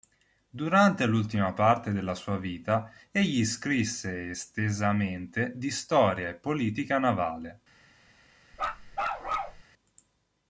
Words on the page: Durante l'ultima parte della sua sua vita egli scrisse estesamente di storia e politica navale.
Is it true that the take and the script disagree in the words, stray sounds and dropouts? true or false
true